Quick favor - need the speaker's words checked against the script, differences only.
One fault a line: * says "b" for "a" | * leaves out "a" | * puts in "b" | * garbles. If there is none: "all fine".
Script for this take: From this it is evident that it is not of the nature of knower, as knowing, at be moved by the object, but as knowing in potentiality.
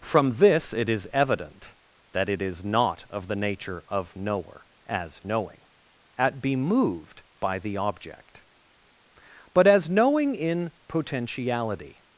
all fine